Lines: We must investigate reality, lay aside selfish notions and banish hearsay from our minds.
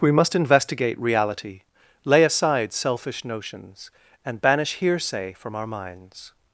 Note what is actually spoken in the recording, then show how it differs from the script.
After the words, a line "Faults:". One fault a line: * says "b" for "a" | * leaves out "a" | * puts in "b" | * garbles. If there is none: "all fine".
We must investigate reality, lay aside selfish notions and banish hearsay from our minds.
Faults:
all fine